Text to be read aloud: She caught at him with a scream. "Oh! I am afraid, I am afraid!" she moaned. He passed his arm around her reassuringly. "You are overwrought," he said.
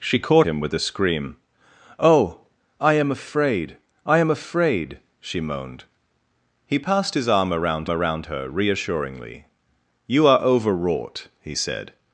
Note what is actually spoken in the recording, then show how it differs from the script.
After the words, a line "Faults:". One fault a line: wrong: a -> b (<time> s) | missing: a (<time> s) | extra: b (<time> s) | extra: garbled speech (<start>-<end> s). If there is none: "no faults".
She caught him with a scream. "Oh! I am afraid, I am afraid!" she moaned. He passed his arm around around her reassuringly. "You are overwrought," he said.
Faults:
missing: at (0.5 s)
extra: around (7.9 s)